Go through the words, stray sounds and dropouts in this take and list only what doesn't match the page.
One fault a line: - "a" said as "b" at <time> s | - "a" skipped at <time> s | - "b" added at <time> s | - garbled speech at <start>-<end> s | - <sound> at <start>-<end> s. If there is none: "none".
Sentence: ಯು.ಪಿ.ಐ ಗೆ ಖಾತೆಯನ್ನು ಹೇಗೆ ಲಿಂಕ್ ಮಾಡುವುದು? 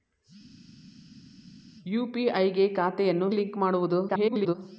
- "ಹೇಗೆ" skipped at 3.3 s
- garbled speech at 4.1-4.5 s